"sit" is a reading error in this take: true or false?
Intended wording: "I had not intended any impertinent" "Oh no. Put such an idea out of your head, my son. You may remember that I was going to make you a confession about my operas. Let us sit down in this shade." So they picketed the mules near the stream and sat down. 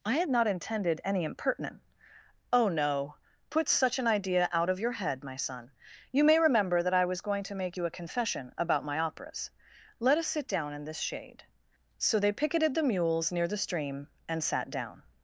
false